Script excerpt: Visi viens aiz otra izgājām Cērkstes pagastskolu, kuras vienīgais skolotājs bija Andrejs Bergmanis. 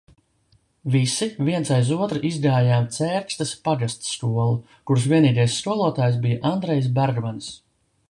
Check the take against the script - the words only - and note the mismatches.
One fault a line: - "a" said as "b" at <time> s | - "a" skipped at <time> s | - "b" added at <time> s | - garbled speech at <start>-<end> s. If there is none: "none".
none